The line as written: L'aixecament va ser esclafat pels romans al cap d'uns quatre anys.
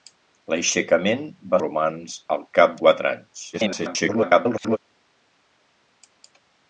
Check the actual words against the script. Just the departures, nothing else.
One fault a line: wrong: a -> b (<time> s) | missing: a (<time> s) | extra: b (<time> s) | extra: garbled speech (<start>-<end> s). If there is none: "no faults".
missing: ser esclafat pels (1.6 s)
missing: d'uns (2.8 s)
extra: garbled speech (3.5-4.8 s)